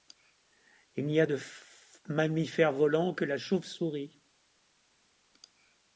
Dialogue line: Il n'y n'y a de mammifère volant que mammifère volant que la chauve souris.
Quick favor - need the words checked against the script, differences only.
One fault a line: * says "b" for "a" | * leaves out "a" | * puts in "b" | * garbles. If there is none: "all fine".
* leaves out "n'y"
* leaves out "mammifère volant que"